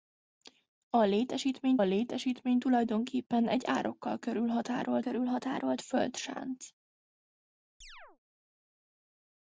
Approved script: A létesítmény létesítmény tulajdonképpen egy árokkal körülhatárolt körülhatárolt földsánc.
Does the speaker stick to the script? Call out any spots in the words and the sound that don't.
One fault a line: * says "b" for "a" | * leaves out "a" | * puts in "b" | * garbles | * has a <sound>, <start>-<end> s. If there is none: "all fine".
* has a chirp, 7.8-8.2 s